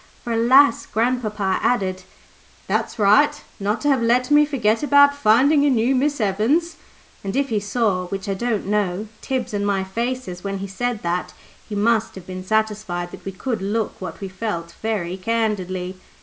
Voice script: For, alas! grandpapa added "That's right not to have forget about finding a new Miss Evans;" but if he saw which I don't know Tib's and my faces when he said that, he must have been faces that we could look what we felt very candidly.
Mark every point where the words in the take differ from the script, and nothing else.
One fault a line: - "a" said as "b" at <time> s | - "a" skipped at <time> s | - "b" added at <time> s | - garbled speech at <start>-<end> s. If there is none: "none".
- "let me" added at 4.0 s
- "but" said as "and" at 7.2 s
- "faces" said as "satisfied" at 12.4 s